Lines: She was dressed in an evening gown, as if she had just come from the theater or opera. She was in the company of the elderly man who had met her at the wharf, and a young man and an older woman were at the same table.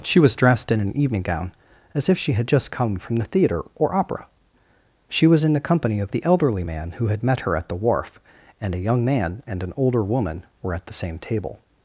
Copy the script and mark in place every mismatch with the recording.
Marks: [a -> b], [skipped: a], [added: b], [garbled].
She was dressed in an evening gown, as if she had just come from the theater or opera. She was in the company of the elderly man who had met her at the wharf, and a young man and an older woman were at the same table.